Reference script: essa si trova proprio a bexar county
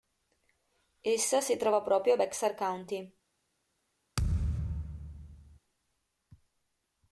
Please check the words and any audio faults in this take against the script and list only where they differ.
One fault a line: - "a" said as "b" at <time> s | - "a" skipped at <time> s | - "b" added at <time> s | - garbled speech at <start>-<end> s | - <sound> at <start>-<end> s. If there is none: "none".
- thud at 4.2-5.6 s